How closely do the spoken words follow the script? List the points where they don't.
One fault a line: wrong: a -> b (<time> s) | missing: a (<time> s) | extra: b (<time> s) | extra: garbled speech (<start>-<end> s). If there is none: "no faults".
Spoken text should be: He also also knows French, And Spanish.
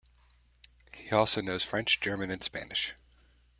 missing: also (1.4 s)
extra: German (2.0 s)